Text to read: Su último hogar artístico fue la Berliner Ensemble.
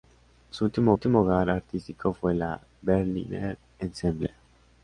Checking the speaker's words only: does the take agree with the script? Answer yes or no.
no